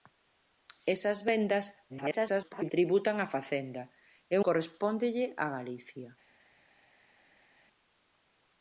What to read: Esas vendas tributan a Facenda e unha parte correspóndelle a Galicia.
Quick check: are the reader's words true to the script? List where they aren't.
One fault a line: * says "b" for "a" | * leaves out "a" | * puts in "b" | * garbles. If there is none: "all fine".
* garbles
* leaves out "unha parte"